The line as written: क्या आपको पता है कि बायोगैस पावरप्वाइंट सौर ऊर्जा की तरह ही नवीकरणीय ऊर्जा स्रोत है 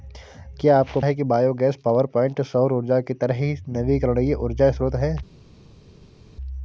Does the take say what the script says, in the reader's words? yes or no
no